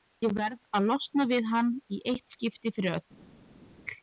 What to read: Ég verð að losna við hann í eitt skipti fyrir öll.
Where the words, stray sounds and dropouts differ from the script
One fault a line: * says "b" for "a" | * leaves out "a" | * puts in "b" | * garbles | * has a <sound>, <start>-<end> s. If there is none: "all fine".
all fine